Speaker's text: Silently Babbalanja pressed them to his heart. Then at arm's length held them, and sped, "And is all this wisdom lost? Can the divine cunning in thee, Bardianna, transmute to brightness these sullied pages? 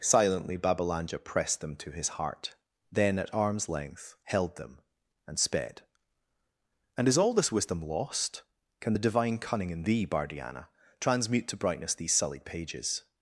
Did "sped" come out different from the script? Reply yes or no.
no